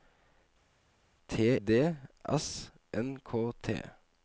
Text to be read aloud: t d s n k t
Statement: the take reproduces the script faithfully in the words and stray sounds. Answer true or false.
true